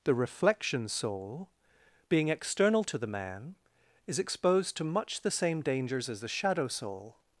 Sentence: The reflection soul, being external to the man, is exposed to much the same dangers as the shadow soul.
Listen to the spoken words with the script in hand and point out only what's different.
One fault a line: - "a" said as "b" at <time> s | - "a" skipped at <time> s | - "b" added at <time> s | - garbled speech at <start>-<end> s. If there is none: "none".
none